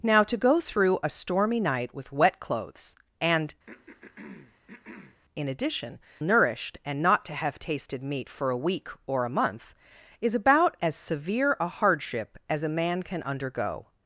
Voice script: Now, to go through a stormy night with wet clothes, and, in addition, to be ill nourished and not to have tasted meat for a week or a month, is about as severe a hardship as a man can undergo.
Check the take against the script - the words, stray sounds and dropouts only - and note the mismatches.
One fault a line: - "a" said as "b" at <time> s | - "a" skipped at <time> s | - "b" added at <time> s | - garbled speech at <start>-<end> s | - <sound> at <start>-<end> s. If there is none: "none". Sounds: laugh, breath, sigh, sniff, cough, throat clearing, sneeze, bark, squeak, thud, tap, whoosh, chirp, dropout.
- throat clearing at 3.7-5.2 s
- "to be ill" skipped at 6.0 s